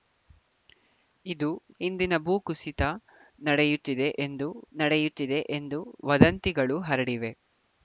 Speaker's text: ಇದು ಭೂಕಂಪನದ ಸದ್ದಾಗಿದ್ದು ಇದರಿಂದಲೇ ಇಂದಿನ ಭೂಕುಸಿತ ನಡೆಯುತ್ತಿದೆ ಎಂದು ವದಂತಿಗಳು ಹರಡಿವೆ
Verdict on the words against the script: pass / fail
fail